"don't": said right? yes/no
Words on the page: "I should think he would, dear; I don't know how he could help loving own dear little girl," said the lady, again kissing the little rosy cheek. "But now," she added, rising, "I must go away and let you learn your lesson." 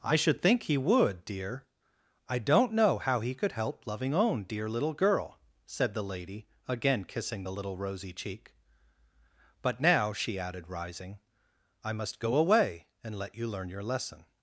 yes